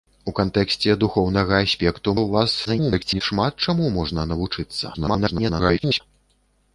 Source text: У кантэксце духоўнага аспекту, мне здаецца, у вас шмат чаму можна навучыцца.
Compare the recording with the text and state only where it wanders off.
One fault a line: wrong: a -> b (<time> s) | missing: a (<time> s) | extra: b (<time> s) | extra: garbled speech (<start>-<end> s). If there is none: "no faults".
missing: мне здаецца (2.1 s)
extra: garbled speech (2.6-3.2 s)
extra: garbled speech (4.9-6.0 s)